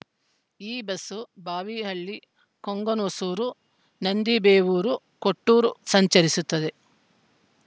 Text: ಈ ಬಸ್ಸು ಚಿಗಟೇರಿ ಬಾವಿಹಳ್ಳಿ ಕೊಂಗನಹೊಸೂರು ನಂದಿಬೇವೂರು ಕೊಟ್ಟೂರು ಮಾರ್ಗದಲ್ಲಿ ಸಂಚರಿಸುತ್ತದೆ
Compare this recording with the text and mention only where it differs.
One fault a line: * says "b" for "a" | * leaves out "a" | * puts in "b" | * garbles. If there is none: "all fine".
* leaves out "ಚಿಗಟೇರಿ"
* leaves out "ಮಾರ್ಗದಲ್ಲಿ"